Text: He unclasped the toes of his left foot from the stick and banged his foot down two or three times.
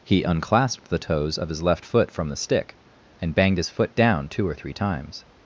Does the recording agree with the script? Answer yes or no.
yes